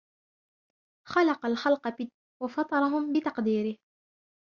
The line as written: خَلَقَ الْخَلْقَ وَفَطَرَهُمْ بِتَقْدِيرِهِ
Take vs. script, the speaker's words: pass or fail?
pass